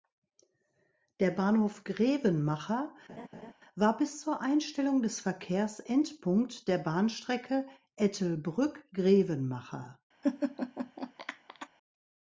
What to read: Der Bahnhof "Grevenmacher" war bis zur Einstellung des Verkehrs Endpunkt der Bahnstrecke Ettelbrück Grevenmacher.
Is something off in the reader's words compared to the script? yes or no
no